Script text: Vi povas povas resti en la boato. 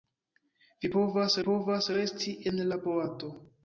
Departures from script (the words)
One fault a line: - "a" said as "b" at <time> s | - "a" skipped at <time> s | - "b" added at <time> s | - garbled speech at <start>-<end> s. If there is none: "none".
none